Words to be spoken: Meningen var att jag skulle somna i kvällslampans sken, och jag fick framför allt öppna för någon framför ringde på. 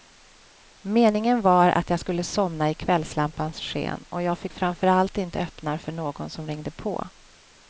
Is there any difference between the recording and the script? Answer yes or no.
yes